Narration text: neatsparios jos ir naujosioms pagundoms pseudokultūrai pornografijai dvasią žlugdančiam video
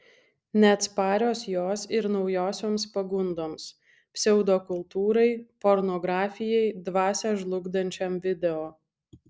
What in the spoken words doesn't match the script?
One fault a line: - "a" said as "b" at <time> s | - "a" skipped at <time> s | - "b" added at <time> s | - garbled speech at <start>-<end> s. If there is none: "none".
none